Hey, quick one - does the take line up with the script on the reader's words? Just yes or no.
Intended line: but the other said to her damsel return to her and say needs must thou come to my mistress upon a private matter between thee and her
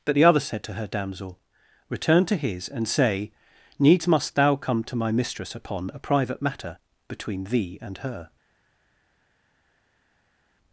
no